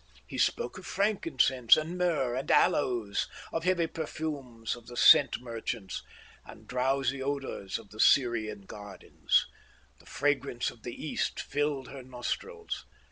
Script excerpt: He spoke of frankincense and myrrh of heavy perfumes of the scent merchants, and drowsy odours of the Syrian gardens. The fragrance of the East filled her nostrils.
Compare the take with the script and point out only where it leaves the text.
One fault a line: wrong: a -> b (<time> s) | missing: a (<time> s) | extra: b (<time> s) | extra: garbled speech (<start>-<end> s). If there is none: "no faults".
extra: and aloes (2.4 s)